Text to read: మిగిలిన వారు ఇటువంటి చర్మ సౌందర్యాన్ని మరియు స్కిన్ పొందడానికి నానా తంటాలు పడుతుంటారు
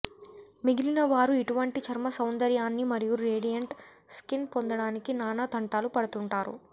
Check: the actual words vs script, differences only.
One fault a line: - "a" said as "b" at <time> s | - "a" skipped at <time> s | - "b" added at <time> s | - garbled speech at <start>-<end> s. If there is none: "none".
- "రేడియంట్" added at 3.2 s